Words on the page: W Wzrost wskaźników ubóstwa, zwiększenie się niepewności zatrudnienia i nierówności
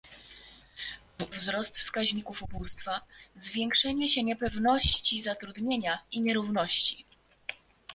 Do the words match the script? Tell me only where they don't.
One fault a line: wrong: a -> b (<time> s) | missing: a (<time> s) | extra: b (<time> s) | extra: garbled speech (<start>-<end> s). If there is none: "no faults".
no faults